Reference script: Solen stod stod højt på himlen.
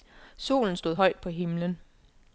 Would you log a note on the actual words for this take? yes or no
yes